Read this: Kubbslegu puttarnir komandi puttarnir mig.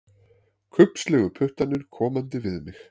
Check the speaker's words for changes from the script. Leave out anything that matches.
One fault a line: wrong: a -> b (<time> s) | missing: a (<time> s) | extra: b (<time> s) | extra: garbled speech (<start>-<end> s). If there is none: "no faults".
wrong: puttarnir -> við (2.5 s)